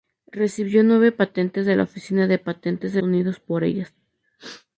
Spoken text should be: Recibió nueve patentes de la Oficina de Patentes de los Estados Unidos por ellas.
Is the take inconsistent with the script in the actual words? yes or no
yes